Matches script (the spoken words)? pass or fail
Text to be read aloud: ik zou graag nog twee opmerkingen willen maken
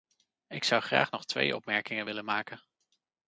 pass